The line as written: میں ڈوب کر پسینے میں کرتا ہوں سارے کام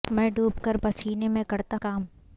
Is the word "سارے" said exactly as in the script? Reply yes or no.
no